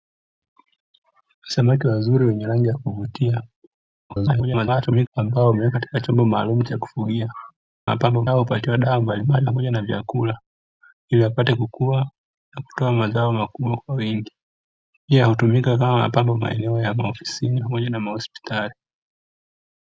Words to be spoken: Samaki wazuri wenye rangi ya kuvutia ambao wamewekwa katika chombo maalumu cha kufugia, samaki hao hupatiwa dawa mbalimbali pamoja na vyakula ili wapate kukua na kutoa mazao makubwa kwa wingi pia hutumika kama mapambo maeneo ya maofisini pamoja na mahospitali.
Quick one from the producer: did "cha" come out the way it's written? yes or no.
yes